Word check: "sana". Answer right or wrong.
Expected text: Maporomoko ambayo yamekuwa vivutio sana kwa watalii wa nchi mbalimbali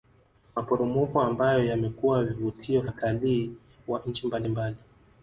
wrong